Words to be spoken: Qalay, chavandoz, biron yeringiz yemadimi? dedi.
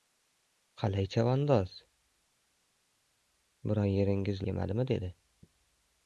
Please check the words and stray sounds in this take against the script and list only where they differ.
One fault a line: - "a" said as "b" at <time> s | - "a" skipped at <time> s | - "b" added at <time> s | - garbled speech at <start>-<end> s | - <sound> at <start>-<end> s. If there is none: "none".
none